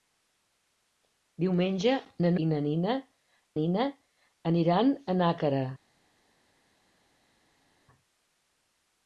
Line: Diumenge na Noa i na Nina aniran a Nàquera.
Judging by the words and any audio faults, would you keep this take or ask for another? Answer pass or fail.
fail